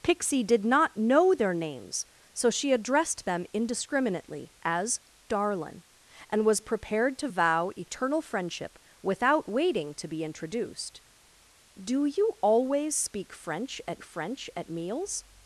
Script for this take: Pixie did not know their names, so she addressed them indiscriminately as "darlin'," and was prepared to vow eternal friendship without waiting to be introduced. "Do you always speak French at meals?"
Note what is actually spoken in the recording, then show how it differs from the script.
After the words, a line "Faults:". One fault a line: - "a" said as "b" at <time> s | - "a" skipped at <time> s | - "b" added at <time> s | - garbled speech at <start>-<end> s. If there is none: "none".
Pixie did not know their names, so she addressed them indiscriminately as "darlin'," and was prepared to vow eternal friendship without waiting to be introduced. "Do you always speak French at French at meals?"
Faults:
- "French at" added at 14.0 s